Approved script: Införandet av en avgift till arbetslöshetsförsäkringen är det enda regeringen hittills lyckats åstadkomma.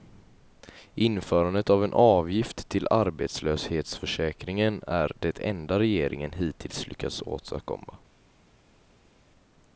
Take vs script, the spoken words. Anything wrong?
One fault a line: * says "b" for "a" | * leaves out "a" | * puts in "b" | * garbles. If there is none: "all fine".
all fine